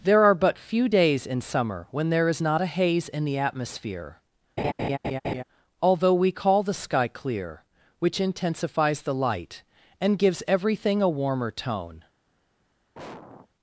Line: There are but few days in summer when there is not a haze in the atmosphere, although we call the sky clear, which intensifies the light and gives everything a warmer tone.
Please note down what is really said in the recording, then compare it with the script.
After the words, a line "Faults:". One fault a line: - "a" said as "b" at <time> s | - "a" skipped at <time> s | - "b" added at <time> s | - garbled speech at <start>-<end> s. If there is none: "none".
There are but few days in summer when there is not a haze in the atmosphere, although we call the sky clear, which intensifies the light and gives everything a warmer tone.
Faults:
none